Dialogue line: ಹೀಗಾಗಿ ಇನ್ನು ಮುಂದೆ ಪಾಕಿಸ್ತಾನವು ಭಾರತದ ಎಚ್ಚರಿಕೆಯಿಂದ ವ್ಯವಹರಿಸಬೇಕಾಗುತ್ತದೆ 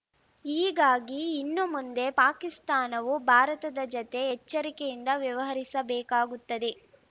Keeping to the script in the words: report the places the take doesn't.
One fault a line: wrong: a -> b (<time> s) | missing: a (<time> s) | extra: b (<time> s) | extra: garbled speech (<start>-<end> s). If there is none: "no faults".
extra: ಜತೆ (3.9 s)